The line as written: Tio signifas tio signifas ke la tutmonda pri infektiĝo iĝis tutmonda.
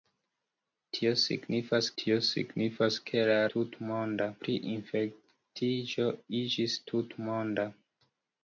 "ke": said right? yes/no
yes